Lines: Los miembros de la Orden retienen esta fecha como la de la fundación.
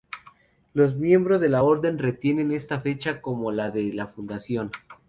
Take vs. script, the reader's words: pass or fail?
pass